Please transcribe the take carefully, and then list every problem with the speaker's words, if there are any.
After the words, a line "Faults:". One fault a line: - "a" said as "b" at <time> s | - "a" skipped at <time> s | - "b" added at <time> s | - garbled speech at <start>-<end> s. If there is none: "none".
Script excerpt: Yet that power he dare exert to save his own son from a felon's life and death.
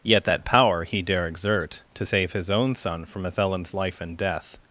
Yet that power he dare exert to save his own son from a felon's life and death.
Faults:
none